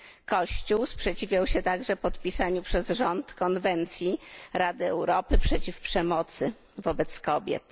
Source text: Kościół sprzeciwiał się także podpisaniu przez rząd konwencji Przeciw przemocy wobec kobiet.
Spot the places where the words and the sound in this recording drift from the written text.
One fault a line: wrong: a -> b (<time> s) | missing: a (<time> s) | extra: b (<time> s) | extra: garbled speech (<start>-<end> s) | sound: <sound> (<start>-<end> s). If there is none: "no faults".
extra: Rady Europy (4.5 s)